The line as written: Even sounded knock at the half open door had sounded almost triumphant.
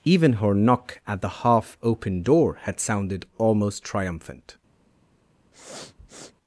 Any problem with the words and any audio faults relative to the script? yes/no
yes